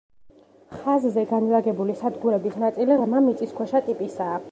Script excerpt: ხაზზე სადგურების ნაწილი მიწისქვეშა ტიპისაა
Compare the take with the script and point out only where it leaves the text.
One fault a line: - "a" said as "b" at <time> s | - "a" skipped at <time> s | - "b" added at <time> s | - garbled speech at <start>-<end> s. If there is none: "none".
- "განლაგებული" added at 1.3 s
- "ღრმა" added at 3.0 s